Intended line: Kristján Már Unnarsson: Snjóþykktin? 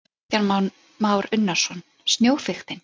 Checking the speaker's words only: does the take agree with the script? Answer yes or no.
yes